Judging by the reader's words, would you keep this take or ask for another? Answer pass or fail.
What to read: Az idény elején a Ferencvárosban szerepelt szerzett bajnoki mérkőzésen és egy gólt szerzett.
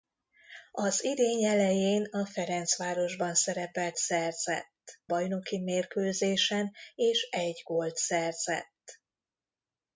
pass